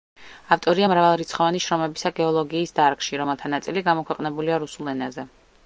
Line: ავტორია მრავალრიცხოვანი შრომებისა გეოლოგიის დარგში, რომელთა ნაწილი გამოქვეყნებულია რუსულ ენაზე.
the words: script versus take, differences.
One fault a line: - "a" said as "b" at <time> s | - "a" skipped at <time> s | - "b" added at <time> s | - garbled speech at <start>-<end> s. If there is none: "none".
none